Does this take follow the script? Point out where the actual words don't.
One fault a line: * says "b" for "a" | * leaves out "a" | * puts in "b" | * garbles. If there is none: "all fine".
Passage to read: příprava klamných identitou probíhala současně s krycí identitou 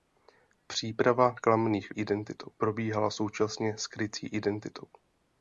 all fine